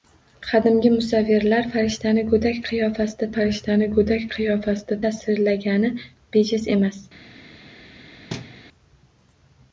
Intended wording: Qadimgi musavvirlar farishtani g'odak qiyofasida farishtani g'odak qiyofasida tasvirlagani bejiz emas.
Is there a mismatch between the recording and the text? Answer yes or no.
no